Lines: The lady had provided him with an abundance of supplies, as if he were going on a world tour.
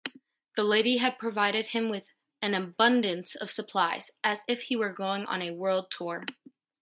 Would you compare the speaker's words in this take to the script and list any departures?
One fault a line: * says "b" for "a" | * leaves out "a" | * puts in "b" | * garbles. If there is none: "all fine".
all fine